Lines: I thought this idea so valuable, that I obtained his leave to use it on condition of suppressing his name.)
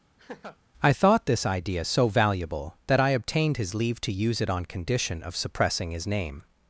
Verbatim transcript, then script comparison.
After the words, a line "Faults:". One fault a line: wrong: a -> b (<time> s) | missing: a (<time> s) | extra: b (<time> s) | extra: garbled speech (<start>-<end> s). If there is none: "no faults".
I thought this idea so valuable, that I obtained his leave to use it on condition of suppressing his name.)
Faults:
no faults